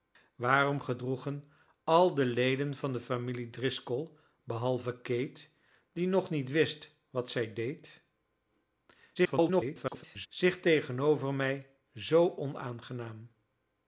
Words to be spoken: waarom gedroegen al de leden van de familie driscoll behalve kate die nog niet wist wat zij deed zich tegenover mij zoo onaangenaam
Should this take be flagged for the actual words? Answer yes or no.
yes